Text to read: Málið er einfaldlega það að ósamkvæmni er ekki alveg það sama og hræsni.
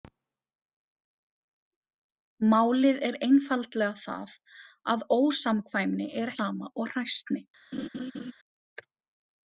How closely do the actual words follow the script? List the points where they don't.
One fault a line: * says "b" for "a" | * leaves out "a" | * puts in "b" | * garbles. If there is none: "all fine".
* leaves out "ekki alveg það"